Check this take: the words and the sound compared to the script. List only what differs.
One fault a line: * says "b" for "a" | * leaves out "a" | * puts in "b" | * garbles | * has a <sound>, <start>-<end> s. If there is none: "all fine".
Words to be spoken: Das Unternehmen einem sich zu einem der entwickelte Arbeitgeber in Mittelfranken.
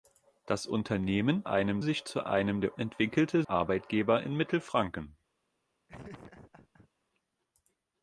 * has a laugh, 5.9-6.9 s